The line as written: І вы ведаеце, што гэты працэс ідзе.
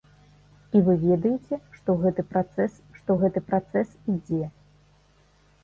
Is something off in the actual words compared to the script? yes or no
yes